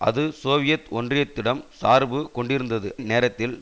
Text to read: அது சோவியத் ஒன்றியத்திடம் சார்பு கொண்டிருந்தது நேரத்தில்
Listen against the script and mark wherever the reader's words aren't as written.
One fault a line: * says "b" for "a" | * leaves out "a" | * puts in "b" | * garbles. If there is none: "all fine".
all fine